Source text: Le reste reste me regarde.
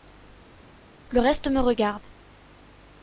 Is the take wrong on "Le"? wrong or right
right